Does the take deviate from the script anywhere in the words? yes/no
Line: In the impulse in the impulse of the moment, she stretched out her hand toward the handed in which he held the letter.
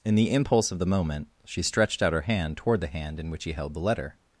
yes